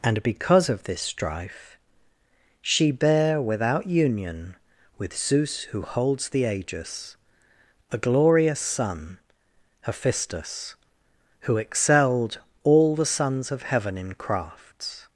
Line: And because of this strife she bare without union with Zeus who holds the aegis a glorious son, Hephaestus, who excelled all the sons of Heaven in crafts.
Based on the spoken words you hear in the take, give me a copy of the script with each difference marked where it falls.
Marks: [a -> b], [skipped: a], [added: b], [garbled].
And because of this strife she bare without union with Zeus who holds the aegis a glorious son, Hephaestus, who excelled all the sons of Heaven in crafts.